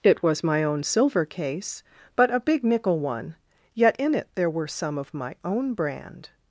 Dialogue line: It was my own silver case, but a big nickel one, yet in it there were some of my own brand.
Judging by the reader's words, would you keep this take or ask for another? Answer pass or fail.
pass